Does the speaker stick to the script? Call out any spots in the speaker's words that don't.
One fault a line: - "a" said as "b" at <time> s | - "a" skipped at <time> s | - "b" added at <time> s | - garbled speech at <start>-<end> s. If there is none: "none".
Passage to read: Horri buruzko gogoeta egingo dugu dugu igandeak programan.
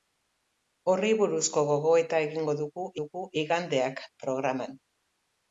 none